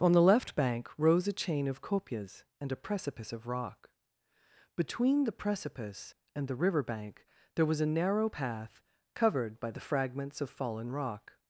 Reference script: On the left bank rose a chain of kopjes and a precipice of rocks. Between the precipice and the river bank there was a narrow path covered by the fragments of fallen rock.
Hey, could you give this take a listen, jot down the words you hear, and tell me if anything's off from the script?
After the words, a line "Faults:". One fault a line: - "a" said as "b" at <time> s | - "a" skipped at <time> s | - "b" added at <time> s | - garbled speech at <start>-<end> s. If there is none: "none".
On the left bank rose a chain of kopjes and a precipice of rock. Between the precipice and the river bank there was a narrow path covered by the fragments of fallen rock.
Faults:
- "rocks" said as "rock" at 3.5 s